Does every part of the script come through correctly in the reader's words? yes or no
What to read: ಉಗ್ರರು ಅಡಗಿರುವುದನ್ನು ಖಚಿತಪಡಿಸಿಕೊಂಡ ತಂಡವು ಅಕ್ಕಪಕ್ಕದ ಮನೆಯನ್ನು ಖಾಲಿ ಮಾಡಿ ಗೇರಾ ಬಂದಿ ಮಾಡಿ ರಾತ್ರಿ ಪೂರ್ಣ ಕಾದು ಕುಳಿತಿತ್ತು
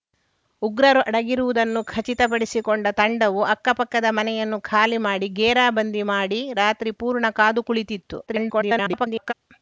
no